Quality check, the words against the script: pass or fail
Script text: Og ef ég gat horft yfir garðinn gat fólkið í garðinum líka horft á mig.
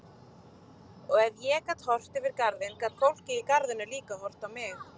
pass